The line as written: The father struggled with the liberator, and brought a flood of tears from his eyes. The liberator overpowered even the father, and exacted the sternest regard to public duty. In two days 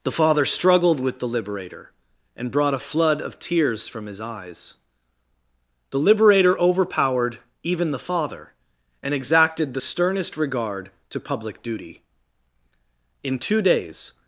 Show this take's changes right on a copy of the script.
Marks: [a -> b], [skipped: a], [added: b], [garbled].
The father struggled with the liberator, and brought a flood of tears from his eyes. The liberator overpowered even the father, and exacted the sternest regard to public duty. In two days